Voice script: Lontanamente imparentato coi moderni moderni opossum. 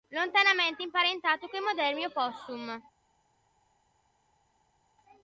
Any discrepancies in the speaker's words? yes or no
yes